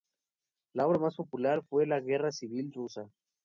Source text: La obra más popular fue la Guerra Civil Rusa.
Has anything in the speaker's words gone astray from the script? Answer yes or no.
no